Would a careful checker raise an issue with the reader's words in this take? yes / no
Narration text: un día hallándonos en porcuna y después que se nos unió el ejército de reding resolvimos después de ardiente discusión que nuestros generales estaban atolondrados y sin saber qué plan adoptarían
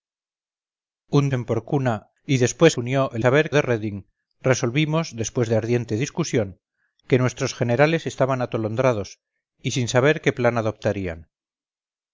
yes